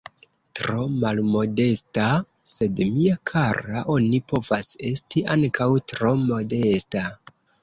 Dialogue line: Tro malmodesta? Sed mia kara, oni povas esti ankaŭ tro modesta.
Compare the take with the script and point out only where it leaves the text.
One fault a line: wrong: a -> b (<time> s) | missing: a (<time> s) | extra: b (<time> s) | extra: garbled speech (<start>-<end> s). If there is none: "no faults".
no faults